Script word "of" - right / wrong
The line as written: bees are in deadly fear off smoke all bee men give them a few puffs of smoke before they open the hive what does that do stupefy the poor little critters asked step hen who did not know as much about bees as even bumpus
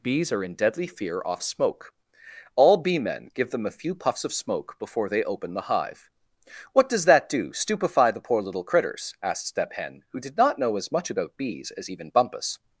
right